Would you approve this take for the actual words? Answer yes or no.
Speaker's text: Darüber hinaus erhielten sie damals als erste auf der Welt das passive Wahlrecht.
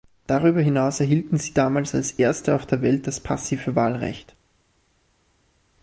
yes